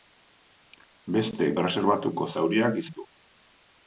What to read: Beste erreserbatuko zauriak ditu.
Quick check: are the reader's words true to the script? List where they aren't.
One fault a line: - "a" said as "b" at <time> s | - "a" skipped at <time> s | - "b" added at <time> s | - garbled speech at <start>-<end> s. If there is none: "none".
none